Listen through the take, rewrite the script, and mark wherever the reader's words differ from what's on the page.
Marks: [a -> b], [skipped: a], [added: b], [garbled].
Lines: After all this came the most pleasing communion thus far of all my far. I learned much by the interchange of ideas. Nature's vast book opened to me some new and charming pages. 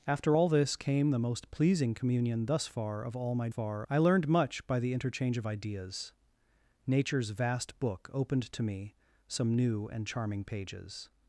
After all this came the most pleasing communion thus far of all my far. I learned much by the interchange of ideas. Nature's vast book opened to me some new and charming pages.